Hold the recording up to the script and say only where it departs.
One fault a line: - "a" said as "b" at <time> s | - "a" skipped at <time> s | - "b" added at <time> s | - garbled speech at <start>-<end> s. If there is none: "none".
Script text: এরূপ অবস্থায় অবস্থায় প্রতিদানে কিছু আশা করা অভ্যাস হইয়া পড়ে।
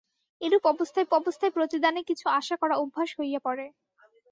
none